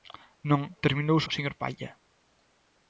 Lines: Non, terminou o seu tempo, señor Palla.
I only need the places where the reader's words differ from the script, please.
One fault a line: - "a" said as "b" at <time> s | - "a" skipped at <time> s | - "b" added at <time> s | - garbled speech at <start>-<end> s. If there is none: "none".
- "seu tempo" skipped at 1.2 s